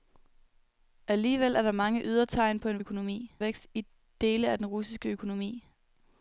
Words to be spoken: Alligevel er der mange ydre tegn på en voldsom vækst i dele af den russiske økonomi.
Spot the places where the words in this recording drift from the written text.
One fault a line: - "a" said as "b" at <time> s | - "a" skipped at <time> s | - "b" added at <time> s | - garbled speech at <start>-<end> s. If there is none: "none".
- "voldsom" said as "økonomi" at 2.8 s